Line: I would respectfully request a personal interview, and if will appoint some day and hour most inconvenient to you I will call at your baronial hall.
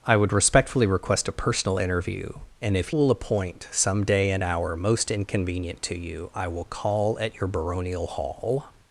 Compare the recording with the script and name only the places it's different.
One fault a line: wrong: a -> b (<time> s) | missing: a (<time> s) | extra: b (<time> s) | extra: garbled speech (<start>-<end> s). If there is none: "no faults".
no faults